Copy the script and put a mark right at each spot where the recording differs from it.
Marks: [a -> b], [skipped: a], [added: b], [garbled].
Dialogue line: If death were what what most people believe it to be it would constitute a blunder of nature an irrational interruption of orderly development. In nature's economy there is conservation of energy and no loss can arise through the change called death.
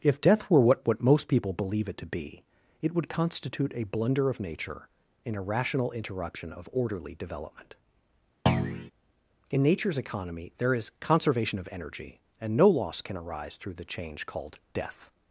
If death were what what most people believe it to be it would constitute a blunder of nature an irrational interruption of orderly development. In nature's economy there is conservation of energy and no loss can arise through the change called death.